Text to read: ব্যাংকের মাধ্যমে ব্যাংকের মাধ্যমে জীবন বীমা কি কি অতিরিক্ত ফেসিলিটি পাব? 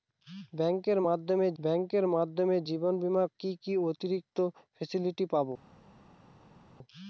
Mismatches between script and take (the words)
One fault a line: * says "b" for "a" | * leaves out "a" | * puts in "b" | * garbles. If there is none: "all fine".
all fine